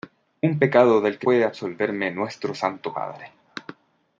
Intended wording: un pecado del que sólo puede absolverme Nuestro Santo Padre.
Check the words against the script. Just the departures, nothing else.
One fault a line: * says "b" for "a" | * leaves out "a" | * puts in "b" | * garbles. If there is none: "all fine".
* leaves out "sólo"